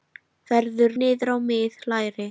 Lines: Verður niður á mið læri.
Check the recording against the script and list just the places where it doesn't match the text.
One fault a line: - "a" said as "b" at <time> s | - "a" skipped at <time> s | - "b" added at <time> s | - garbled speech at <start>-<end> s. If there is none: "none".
none